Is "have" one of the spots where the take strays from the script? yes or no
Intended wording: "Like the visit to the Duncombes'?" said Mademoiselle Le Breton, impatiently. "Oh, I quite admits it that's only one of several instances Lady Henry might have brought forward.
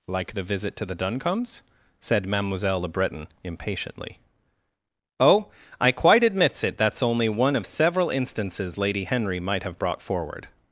no